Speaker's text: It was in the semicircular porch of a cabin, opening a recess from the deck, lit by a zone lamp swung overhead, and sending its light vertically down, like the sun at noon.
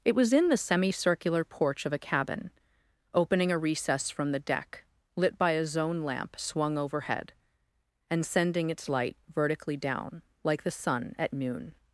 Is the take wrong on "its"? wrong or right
right